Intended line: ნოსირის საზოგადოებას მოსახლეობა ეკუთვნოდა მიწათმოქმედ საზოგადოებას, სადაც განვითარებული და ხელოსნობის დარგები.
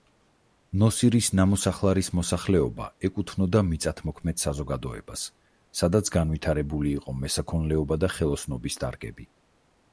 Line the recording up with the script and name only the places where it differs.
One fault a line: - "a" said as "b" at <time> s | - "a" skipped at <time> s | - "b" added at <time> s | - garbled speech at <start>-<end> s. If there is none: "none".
- "საზოგადოებას" said as "ნამოსახლარის" at 1.4 s
- "იყო მესაქონლეობა" added at 7.0 s